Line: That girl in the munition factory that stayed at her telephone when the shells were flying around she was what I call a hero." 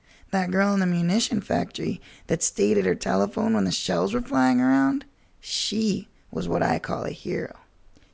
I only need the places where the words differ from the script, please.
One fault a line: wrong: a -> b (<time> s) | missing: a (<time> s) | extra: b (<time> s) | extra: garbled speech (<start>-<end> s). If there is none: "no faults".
no faults